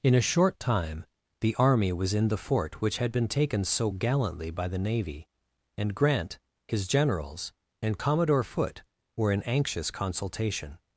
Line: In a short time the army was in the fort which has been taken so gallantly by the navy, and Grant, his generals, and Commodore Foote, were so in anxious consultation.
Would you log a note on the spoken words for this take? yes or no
yes